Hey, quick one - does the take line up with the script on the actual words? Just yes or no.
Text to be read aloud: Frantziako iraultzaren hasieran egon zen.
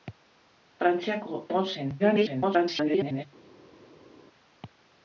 no